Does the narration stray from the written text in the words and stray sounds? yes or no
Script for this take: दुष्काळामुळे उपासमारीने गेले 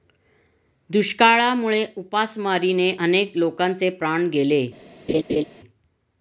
yes